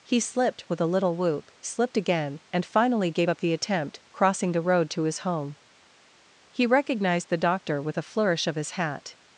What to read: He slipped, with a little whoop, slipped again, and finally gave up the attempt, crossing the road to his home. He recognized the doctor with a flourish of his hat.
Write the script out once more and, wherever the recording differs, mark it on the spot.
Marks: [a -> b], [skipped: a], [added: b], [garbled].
He slipped, with a little whoop, slipped again, and finally gave up the attempt, crossing the road to his home. He recognized the doctor with a flourish of his hat.